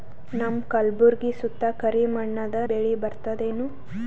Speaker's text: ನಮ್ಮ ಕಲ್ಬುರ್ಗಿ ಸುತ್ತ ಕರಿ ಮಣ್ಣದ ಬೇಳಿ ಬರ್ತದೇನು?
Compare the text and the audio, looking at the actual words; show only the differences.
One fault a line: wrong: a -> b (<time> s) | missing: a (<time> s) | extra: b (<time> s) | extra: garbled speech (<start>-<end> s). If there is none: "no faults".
no faults